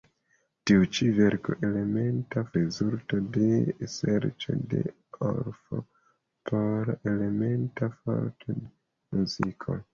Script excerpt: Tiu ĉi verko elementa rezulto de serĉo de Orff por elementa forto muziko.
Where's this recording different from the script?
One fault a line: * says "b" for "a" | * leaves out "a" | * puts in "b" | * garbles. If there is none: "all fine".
all fine